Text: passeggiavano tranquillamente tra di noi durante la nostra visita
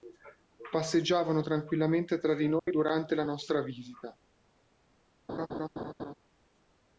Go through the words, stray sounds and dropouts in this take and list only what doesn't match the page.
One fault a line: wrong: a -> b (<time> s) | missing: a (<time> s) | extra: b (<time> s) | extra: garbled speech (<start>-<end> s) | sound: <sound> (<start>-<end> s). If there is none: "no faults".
sound: dropout (2.6-2.7 s)
sound: laugh (5.3-6.1 s)